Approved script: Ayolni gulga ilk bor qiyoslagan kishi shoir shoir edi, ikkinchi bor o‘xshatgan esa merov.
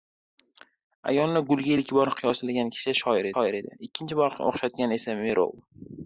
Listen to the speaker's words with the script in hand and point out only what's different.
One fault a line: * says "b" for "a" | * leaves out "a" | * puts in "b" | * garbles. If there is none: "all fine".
all fine